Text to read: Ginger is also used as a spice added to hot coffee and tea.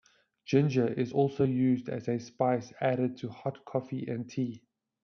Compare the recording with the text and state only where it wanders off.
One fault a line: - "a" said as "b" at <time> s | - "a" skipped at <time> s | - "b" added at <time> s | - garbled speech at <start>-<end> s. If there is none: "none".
none